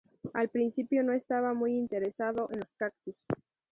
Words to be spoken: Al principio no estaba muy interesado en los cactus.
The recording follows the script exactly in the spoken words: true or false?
true